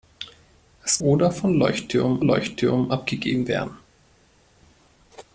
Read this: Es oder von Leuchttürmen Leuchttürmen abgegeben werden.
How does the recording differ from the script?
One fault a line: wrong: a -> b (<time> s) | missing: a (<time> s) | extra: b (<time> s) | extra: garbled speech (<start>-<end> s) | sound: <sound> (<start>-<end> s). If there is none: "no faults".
no faults